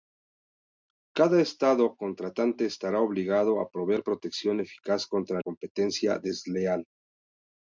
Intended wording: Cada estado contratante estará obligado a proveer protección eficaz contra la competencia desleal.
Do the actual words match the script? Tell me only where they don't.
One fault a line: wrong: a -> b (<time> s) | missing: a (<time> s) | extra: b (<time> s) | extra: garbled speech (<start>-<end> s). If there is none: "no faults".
missing: la (5.4 s)